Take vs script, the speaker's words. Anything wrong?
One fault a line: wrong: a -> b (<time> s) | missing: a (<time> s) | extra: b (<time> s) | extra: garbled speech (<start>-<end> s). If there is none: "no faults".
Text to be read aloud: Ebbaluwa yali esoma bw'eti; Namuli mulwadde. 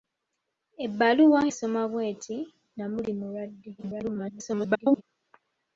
missing: yali (1.4 s)
extra: garbled speech (3.8-5.0 s)